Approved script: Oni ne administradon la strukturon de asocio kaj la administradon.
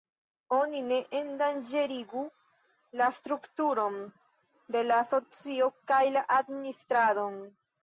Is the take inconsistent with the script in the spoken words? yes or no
yes